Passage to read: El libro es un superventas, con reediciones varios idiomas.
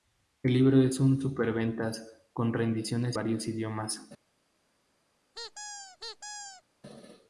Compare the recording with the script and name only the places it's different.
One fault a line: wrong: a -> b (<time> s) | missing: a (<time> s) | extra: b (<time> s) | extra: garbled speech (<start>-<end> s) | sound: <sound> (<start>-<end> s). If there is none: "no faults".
sound: squeak (5.3-6.6 s)